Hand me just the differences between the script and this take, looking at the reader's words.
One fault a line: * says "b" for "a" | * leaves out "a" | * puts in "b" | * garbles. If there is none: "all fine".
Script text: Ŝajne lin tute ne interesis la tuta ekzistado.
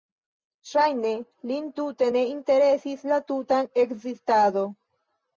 all fine